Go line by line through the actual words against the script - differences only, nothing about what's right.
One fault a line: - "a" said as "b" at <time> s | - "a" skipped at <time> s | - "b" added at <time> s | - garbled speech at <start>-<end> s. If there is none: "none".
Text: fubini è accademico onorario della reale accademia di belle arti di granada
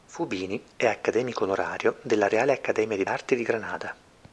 - "belle" skipped at 3.0 s